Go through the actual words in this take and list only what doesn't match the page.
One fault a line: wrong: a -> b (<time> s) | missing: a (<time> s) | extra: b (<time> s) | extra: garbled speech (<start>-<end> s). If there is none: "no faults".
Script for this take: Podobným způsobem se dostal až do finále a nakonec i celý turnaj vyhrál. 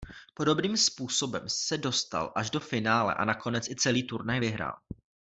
no faults